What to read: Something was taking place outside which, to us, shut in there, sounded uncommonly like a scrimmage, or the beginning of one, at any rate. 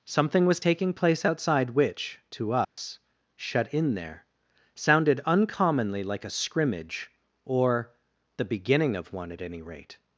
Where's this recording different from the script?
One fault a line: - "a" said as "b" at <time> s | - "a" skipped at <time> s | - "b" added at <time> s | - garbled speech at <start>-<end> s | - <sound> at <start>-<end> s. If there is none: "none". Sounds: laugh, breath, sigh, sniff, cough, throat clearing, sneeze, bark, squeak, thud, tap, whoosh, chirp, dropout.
- dropout at 2.6-2.8 s